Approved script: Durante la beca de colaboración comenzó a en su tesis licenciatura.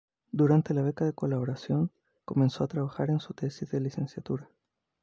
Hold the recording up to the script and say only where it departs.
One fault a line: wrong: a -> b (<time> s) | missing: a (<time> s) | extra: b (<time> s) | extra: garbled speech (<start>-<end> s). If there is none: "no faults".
extra: trabajar (2.7 s)
extra: de (3.7 s)